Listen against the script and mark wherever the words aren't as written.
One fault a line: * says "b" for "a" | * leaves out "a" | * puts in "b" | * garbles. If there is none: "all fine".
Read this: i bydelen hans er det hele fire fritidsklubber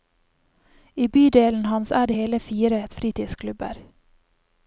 all fine